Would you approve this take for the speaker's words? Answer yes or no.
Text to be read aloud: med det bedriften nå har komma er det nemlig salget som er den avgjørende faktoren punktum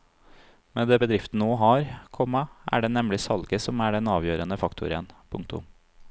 yes